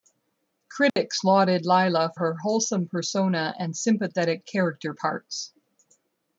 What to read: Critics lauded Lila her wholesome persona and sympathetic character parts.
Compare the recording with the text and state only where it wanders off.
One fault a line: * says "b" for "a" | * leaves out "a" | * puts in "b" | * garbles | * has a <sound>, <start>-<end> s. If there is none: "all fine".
* has a dropout, 0.9-1.0 s